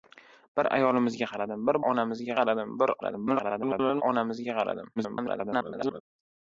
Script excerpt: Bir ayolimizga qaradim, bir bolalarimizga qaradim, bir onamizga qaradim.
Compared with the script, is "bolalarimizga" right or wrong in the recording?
wrong